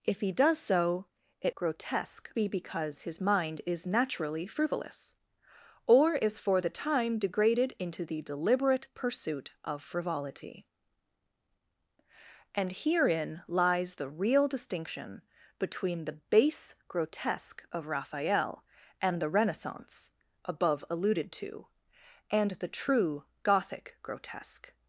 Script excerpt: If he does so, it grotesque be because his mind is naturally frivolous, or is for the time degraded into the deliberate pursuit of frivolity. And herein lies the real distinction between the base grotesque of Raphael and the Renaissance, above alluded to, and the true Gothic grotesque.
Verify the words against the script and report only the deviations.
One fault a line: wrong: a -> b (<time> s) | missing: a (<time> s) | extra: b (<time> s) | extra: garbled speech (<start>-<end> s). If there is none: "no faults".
no faults